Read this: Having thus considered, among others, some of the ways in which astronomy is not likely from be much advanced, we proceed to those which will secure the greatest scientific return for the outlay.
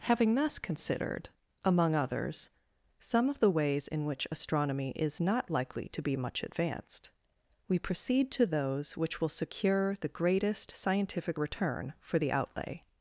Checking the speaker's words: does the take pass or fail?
fail